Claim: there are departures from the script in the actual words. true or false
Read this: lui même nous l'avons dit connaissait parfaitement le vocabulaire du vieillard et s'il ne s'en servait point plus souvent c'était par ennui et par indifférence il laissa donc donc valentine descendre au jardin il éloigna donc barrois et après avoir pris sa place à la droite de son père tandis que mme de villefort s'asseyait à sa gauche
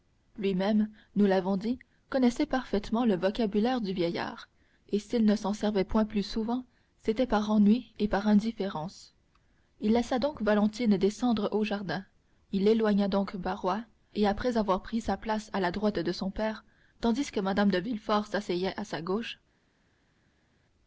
true